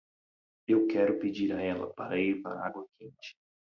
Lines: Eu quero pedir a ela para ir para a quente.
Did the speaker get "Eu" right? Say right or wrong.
right